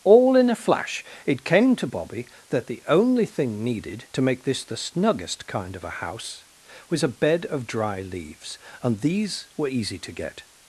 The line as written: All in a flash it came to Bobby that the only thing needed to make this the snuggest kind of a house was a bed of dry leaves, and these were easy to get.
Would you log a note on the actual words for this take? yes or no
no